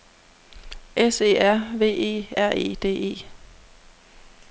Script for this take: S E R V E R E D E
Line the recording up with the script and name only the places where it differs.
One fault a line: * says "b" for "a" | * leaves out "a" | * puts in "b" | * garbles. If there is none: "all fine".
all fine